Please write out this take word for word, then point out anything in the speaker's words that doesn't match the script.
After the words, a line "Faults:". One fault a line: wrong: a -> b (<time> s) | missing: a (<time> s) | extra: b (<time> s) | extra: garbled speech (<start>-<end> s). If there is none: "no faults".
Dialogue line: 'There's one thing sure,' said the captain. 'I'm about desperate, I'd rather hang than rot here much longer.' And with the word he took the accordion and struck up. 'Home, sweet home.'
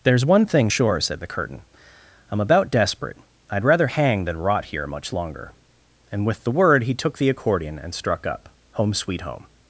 'There's one thing sure,' said the curtain. 'I'm about desperate, I'd rather hang than rot here much longer.' And with the word he took the accordion and struck up. 'Home, sweet home.'
Faults:
wrong: captain -> curtain (1.3 s)